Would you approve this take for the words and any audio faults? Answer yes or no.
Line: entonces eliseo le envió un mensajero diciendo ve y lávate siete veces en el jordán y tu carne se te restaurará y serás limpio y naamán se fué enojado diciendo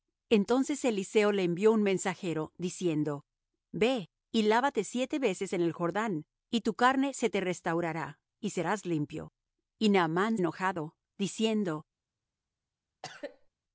no